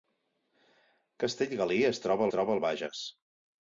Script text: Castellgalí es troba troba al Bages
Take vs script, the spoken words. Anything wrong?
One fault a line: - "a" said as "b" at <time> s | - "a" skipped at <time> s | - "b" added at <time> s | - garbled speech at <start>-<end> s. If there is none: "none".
none